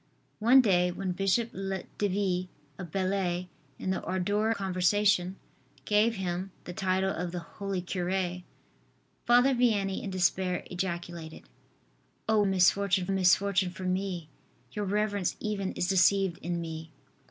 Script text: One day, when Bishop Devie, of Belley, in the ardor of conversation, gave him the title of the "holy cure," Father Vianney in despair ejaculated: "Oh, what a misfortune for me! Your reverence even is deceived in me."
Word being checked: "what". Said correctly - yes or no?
no